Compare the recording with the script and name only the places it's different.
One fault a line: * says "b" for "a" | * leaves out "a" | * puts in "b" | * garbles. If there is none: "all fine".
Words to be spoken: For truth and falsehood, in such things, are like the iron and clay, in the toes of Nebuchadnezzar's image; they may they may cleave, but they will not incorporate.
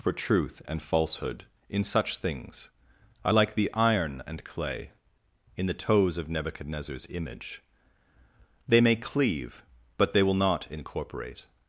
* leaves out "they may"